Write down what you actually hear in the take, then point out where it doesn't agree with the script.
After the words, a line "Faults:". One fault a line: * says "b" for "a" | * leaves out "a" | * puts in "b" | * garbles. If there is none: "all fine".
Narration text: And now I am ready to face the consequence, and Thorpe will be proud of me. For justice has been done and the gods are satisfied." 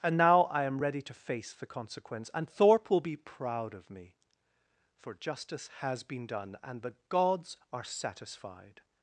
And now I am ready to face the consequence, and Thorpe will be proud of me. For justice has been done and the gods are satisfied."
Faults:
all fine